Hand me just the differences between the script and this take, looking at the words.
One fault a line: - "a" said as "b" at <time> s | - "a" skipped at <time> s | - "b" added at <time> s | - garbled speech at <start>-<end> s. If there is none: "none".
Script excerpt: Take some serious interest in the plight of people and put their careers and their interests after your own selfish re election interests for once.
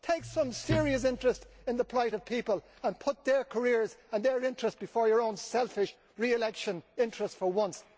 - "after" said as "before" at 4.8 s